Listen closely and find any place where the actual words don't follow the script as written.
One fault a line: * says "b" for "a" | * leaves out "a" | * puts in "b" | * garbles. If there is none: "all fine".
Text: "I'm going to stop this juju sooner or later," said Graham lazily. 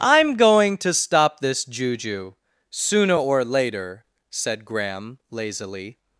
all fine